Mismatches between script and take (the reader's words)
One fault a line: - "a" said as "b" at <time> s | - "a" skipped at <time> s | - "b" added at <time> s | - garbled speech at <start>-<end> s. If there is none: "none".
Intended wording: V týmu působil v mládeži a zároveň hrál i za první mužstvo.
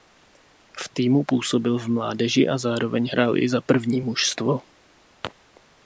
none